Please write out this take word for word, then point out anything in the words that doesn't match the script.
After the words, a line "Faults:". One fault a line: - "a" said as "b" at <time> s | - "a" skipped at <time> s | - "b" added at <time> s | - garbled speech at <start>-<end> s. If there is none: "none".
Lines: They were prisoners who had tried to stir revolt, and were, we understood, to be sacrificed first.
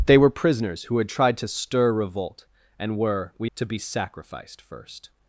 They were prisoners who had tried to stir revolt, and were, we to be sacrificed first.
Faults:
- "understood" skipped at 3.5 s